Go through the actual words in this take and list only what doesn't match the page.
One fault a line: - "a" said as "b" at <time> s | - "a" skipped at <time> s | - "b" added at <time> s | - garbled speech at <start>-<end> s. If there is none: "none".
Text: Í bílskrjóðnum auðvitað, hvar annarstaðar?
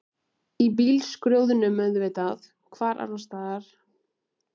none